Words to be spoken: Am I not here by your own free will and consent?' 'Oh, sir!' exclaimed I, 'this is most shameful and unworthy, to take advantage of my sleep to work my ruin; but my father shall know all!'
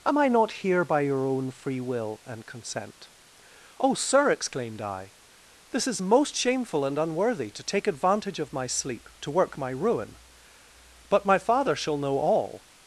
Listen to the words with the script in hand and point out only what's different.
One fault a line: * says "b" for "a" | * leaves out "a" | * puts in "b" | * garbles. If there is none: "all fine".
all fine